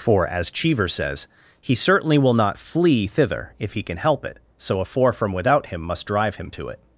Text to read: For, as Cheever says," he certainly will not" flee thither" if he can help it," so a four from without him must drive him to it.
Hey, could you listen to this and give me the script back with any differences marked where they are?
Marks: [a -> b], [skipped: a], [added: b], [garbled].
For, as Cheever says," he certainly will not" flee thither" if he can help it," so a four from without him must drive him to it.